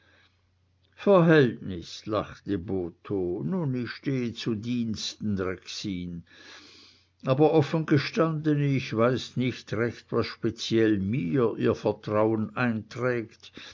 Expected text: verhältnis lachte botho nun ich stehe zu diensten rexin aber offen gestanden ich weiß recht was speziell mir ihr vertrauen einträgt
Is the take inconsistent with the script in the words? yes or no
yes